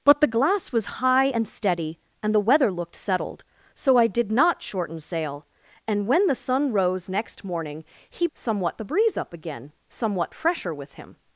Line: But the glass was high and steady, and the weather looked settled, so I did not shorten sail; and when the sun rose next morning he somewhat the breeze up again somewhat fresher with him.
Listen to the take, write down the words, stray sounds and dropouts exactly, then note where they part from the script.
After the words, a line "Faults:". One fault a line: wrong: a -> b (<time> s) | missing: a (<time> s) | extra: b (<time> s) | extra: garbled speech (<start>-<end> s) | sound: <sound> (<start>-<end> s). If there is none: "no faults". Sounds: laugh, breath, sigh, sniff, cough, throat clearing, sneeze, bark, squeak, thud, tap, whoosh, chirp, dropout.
But the glass was high and steady, and the weather looked settled, so I did not shorten sail; and when the sun rose next morning he somewhat the breeze up again somewhat fresher with him.
Faults:
no faults